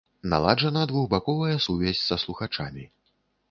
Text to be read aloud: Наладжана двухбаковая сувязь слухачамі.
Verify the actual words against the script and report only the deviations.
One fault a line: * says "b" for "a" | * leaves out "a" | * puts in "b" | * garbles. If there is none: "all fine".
* puts in "са"